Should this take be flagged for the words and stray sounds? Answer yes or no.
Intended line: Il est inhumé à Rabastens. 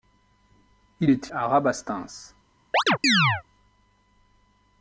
yes